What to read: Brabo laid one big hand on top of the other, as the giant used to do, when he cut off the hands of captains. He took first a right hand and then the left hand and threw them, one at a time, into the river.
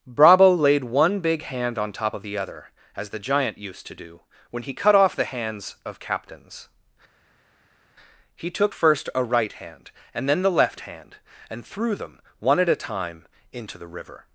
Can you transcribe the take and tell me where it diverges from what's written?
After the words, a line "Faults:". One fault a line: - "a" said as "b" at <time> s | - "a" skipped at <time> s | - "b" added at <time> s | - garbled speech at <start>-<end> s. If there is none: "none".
Brabo laid one big hand on top of the other, as the giant used to do, when he cut off the hands of captains. He took first a right hand and then the left hand and threw them, one at a time, into the river.
Faults:
none